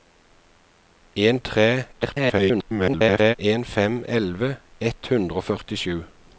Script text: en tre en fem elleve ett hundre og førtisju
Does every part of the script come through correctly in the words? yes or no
no